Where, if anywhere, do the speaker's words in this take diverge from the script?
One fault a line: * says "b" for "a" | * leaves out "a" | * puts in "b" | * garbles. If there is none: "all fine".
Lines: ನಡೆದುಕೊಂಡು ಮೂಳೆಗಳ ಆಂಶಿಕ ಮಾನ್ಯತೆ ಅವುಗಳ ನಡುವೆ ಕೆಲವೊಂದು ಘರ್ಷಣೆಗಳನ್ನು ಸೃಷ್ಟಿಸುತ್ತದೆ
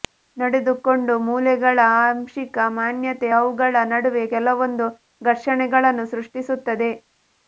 all fine